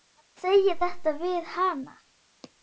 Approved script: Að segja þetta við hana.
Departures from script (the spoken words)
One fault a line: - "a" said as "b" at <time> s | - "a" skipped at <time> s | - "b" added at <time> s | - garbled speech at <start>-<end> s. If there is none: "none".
none